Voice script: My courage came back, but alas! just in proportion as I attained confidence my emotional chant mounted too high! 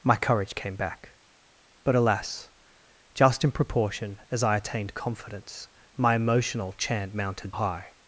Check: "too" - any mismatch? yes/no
yes